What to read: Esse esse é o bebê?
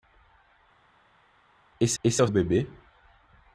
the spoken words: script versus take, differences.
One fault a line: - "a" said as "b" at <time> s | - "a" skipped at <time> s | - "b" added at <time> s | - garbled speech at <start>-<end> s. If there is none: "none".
none